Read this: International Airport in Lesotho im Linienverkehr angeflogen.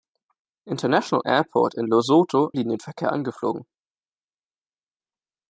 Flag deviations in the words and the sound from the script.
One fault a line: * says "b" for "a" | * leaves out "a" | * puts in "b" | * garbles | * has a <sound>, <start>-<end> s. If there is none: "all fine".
* leaves out "im"